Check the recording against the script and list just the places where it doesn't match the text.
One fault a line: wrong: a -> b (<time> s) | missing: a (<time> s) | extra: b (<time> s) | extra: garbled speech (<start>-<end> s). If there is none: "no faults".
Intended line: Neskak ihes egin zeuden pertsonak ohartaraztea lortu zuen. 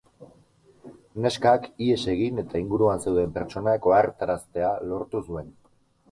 extra: eta inguruan (2.4 s)